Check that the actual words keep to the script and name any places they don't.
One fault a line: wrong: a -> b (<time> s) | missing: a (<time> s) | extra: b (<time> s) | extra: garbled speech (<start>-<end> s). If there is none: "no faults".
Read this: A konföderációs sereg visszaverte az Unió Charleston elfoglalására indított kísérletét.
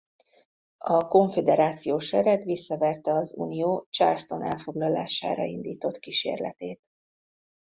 no faults